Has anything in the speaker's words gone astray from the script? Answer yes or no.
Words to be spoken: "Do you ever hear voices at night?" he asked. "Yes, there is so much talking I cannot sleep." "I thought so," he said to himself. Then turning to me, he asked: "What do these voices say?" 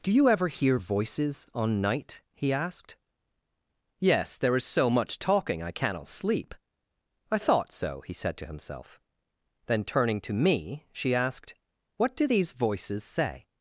yes